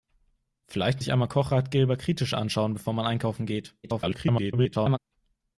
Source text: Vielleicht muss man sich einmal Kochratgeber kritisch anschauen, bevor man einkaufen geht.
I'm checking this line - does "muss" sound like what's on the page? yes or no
no